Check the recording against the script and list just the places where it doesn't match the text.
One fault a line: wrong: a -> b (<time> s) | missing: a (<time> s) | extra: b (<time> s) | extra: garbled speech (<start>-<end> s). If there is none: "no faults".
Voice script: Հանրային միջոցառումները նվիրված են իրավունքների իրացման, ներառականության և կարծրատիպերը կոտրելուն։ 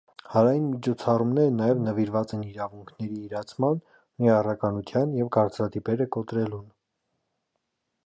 extra: նաև (1.6 s)